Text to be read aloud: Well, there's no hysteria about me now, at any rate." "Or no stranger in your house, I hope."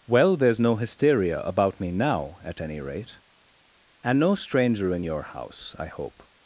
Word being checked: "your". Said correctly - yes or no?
yes